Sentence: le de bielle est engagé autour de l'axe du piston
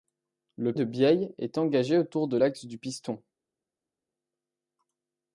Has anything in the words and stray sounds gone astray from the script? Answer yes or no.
no